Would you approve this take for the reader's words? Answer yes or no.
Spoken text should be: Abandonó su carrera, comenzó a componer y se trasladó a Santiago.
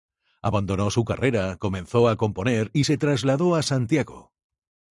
yes